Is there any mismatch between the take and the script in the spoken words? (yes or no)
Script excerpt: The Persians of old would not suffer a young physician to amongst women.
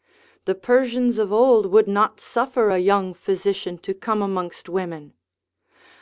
yes